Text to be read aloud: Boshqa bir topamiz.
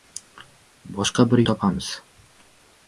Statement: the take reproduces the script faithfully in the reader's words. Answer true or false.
true